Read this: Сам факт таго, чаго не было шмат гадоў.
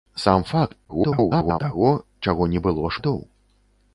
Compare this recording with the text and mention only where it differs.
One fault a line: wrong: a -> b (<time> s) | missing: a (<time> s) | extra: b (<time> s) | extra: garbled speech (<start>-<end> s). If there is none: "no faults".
extra: garbled speech (0.9-1.6 s)
missing: шмат (2.9 s)